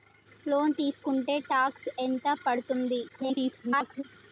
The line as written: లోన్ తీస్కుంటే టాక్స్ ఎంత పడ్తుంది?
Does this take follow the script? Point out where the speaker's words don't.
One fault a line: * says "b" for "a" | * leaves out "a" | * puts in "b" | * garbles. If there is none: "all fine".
* garbles